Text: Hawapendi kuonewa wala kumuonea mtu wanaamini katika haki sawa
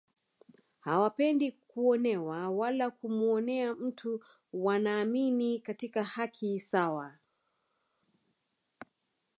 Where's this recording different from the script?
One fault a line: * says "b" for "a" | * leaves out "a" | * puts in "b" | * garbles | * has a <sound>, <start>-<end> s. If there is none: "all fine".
all fine